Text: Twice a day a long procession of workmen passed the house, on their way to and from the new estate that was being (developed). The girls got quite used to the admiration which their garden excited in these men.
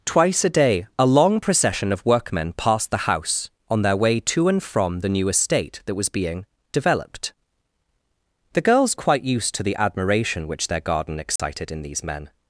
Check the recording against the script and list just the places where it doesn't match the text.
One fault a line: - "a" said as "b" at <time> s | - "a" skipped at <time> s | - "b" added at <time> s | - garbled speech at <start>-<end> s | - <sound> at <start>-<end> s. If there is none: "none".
- "got" skipped at 8.9 s
- dropout at 11.4-11.4 s